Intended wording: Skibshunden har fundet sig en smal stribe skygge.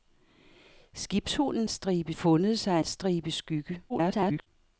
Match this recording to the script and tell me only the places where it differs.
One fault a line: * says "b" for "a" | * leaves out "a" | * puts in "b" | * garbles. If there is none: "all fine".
* says "stribe" for "har"
* leaves out "en smal"
* garbles